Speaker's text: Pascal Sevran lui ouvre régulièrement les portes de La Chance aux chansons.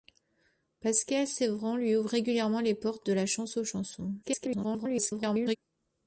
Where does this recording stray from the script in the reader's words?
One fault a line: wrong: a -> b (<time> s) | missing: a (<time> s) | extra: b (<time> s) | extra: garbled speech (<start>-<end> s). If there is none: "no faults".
extra: garbled speech (4.2-5.6 s)